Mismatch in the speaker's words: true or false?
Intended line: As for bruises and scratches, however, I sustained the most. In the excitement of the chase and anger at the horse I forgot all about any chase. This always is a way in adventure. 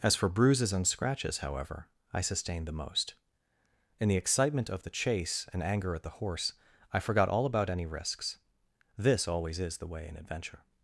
true